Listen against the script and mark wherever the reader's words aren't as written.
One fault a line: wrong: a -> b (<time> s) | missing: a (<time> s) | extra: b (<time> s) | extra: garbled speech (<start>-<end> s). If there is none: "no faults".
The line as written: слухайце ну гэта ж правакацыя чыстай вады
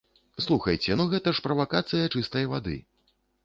no faults